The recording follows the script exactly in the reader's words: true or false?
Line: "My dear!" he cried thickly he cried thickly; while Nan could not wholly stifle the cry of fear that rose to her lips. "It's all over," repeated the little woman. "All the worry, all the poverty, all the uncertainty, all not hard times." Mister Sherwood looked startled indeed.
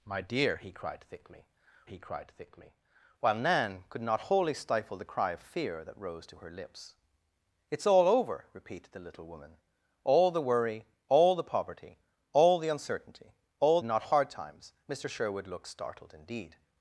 true